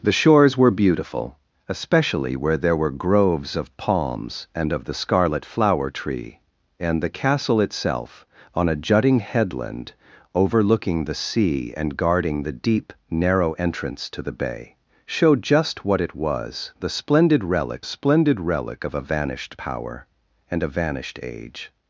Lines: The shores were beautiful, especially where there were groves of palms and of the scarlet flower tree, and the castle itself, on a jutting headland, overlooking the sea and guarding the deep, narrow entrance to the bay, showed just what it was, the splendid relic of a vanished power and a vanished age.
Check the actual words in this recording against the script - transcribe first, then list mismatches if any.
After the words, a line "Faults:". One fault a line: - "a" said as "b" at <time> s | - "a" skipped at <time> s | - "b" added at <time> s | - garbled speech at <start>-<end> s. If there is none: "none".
The shores were beautiful, especially where there were groves of palms and of the scarlet flower tree, and the castle itself, on a jutting headland, overlooking the sea and guarding the deep, narrow entrance to the bay, showed just what it was, the splendid relic splendid relic of a vanished power and a vanished age.
Faults:
- "splendid relic" added at 17.8 s